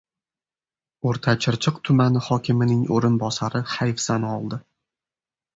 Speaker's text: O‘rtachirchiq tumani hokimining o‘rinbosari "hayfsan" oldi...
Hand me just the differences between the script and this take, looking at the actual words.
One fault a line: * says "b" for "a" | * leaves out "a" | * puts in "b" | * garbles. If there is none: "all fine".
all fine